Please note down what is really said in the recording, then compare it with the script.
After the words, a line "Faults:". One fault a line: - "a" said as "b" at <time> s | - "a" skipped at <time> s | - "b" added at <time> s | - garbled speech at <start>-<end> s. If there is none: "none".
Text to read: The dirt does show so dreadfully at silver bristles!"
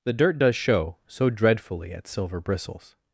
The dirt does show so dreadfully at silver bristles!"
Faults:
none